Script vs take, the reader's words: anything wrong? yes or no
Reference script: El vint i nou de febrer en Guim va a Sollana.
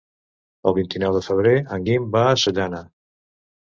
no